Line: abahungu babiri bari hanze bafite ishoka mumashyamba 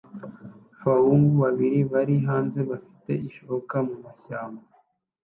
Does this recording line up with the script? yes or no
yes